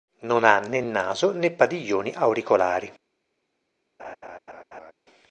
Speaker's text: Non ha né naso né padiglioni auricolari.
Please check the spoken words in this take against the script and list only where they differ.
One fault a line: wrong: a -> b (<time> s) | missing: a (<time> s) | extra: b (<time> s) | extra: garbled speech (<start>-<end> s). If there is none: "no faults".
no faults